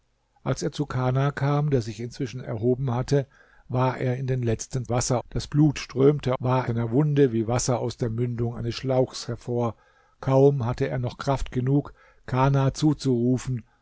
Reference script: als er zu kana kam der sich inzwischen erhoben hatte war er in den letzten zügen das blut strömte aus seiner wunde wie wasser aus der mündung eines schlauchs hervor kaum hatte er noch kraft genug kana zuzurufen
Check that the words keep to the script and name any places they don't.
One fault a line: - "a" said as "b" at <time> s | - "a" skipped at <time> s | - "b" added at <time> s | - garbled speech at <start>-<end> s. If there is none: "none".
- "zügen" said as "wasser" at 4.9 s
- "aus" said as "war" at 6.4 s